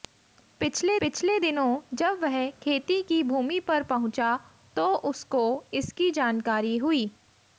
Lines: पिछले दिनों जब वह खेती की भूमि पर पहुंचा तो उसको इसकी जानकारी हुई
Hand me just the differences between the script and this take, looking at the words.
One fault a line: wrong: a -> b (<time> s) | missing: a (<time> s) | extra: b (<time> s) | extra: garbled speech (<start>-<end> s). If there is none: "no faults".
extra: पिछले (1.0 s)